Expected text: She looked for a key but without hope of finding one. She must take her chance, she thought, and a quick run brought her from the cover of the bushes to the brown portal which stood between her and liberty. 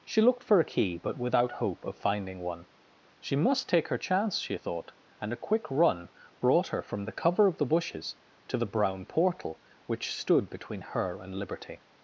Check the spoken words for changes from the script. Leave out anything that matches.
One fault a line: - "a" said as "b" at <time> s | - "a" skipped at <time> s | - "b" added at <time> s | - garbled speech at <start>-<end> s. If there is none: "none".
none